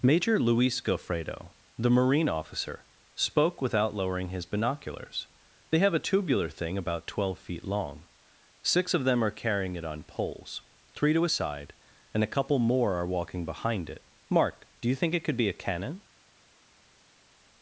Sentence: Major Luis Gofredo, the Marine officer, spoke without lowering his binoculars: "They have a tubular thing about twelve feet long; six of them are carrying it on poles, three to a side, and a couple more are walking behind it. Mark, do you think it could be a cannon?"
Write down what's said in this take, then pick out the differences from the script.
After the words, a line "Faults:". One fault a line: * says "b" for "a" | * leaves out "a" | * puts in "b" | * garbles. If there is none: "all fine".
Major Luis Gofredo, the Marine officer, spoke without lowering his binoculars: "They have a tubular thing about twelve feet long; six of them are carrying it on poles, three to a side, and a couple more are walking behind it. Mark, do you think it could be a cannon?"
Faults:
all fine